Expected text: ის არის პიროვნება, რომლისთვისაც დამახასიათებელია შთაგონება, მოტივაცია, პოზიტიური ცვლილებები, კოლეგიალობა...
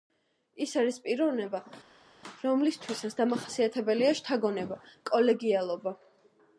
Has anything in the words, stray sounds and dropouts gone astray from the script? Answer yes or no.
yes